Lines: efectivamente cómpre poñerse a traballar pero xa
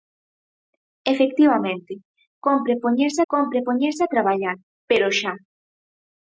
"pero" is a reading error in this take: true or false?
false